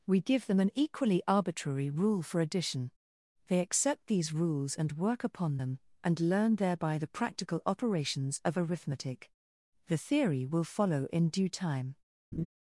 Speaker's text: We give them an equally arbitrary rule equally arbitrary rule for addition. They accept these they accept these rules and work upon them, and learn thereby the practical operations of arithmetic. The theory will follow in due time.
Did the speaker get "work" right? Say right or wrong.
right